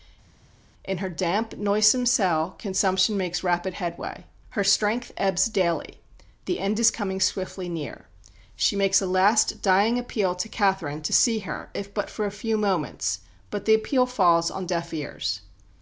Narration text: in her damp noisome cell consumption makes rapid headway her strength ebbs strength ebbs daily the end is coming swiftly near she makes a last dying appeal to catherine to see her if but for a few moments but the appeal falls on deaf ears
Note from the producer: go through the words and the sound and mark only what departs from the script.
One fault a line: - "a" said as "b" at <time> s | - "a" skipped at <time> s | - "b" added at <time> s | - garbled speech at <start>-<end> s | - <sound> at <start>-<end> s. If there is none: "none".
- "strength ebbs" skipped at 5.4 s